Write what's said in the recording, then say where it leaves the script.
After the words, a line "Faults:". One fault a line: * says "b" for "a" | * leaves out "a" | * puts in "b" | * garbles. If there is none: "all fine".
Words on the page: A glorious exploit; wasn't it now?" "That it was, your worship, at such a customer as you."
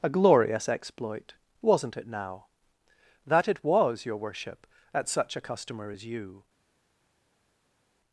A glorious exploit; wasn't it now?" "That it was, your worship, at such a customer as you."
Faults:
all fine